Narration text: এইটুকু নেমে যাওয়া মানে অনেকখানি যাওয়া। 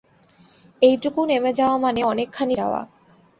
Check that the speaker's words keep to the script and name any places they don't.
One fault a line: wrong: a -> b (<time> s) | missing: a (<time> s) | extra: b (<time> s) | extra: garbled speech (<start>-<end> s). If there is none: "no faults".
no faults